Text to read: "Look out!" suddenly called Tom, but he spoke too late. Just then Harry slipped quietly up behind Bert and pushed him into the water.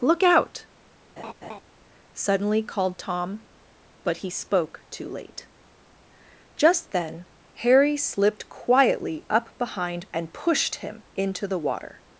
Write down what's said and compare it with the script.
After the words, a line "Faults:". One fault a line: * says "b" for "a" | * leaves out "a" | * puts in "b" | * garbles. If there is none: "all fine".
"Look out!" suddenly called Tom, but he spoke too late. Just then Harry slipped quietly up behind And pushed him into the water.
Faults:
* leaves out "Bert"